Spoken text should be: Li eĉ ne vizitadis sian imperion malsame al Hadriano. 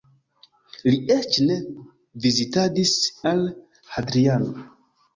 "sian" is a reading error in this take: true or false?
true